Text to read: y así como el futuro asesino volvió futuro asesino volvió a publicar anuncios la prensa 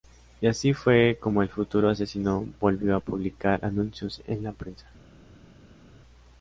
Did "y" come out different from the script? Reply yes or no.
no